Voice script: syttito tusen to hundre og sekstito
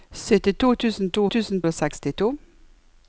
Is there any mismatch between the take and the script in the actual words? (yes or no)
yes